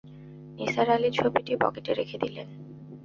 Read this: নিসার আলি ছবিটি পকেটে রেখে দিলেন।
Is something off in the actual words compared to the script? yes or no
no